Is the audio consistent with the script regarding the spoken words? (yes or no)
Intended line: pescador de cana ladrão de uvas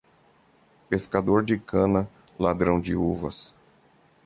yes